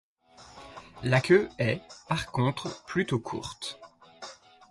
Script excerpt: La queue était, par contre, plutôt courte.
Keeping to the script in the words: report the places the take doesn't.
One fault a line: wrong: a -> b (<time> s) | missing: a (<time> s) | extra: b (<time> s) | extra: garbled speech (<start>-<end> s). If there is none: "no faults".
wrong: était -> est (1.6 s)